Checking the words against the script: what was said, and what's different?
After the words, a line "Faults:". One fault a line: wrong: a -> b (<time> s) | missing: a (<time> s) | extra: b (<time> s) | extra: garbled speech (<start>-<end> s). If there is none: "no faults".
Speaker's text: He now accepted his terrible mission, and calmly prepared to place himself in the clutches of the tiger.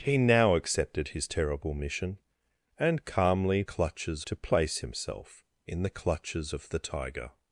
He now accepted his terrible mission, and calmly clutches to place himself in the clutches of the tiger.
Faults:
wrong: prepared -> clutches (3.6 s)